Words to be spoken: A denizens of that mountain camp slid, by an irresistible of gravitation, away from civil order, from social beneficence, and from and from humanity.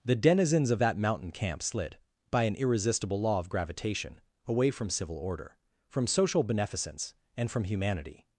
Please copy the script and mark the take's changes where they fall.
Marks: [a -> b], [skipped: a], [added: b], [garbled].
[A -> The] denizens of that mountain camp slid, by an irresistible [added: law] of gravitation, away from civil order, from social beneficence, and from [skipped: and from] humanity.